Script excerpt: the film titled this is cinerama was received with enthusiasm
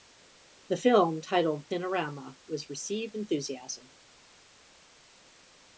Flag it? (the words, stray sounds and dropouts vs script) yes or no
yes